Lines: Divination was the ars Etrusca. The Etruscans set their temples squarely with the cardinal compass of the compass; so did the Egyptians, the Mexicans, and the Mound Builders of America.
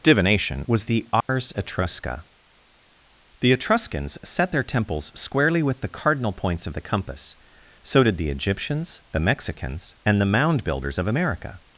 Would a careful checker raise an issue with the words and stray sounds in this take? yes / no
yes